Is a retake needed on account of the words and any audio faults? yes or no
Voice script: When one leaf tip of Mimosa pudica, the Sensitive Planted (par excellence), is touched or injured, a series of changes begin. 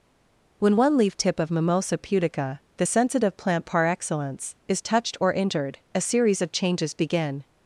yes